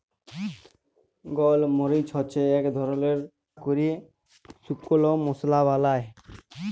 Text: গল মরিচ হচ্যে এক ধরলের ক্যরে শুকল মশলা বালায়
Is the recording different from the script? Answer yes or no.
no